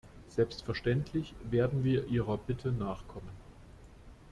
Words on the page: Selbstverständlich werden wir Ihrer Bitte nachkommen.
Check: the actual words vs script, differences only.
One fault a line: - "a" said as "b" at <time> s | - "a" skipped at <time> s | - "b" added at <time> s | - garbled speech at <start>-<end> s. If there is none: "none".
none